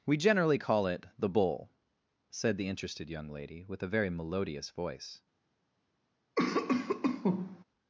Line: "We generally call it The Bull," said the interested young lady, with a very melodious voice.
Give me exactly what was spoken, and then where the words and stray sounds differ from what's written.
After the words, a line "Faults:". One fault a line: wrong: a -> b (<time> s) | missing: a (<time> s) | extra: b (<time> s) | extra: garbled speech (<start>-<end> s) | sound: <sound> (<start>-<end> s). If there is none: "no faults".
"We generally call it The Bull," said the interested young lady, with a very melodious voice.
Faults:
sound: cough (6.4-7.6 s)